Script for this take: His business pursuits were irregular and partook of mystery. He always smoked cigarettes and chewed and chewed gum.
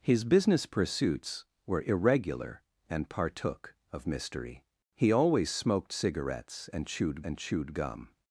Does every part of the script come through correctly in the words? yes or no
yes